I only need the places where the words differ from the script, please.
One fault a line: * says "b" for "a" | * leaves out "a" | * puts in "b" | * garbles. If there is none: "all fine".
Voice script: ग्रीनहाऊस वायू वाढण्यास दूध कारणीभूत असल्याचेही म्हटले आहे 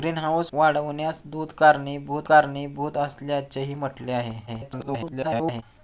* leaves out "वायू"
* puts in "कारणीभूत"
* garbles